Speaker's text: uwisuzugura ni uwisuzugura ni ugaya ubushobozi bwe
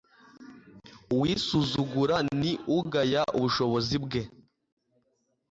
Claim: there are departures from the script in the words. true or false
true